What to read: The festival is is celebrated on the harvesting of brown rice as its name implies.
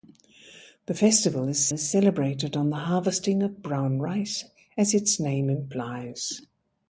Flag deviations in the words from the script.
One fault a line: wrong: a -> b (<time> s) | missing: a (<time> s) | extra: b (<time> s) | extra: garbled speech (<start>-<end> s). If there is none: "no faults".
no faults